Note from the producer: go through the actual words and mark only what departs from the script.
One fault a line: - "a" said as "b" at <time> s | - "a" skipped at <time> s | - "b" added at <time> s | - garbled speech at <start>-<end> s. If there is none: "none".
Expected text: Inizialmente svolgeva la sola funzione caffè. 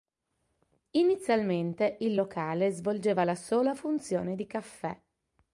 - "il locale" added at 2.0 s
- "di" added at 4.3 s